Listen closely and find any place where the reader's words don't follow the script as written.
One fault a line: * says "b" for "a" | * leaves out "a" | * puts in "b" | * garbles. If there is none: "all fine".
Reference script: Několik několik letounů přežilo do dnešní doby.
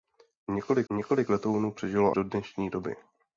all fine